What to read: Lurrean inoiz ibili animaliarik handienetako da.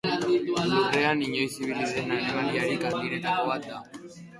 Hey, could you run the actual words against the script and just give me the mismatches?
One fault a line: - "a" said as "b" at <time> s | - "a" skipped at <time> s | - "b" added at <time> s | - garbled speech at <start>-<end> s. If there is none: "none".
- "den" added at 1.9 s
- "bat" added at 3.5 s